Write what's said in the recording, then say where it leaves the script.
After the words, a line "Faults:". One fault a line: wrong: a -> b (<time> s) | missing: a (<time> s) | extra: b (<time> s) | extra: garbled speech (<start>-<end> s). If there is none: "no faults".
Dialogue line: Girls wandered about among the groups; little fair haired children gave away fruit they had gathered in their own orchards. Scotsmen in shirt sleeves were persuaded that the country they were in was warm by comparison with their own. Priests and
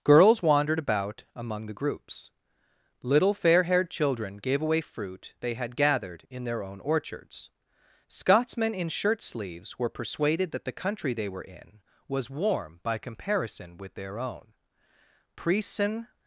Girls wandered about among the groups; little fair haired children gave away fruit they had gathered in their own orchards. Scotsmen in shirt sleeves were persuaded that the country they were in was warm by comparison with their own. Priests and
Faults:
no faults